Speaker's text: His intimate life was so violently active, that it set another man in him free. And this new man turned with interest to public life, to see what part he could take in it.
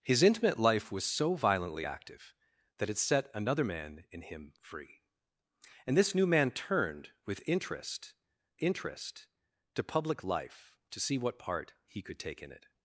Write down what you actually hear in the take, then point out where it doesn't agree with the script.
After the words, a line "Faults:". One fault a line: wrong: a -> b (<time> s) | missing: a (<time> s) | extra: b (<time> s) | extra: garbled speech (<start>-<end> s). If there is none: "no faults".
His intimate life was so violently active, that it set another man in him free. And this new man turned with interest interest to public life, to see what part he could take in it.
Faults:
extra: interest (8.6 s)